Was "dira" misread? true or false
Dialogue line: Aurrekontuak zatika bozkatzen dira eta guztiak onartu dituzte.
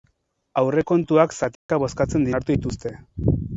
true